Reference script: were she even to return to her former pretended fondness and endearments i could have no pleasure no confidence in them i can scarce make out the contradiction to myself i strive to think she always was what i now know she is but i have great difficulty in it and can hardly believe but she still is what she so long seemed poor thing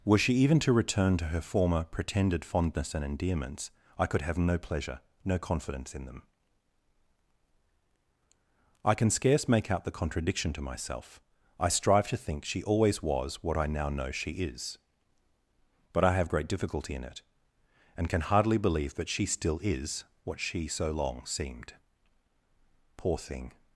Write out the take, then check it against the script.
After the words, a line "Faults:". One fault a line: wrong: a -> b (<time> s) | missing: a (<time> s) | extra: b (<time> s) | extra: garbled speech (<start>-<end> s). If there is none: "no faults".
were she even to return to her former pretended fondness and endearments i could have no pleasure no confidence in them i can scarce make out the contradiction to myself i strive to think she always was what i now know she is but i have great difficulty in it and can hardly believe that she still is what she so long seemed poor thing
Faults:
wrong: but -> that (18.9 s)